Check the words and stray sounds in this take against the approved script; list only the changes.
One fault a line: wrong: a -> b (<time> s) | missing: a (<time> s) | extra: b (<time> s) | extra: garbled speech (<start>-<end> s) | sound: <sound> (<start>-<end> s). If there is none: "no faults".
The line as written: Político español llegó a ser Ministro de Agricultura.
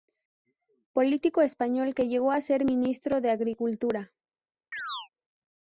extra: que (1.9 s)
sound: chirp (4.7-5.1 s)